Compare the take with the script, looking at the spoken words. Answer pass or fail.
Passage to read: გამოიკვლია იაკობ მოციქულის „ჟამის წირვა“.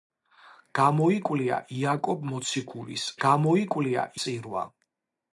fail